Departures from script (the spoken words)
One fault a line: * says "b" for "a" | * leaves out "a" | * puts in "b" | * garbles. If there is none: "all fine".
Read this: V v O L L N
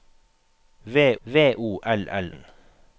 all fine